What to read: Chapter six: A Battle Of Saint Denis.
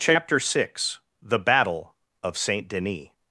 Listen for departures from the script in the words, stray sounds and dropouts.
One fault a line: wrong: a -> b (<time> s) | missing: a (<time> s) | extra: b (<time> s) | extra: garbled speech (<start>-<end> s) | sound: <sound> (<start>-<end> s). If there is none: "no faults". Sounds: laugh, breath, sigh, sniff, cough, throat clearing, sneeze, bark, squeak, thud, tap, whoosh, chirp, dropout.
wrong: A -> The (1.2 s)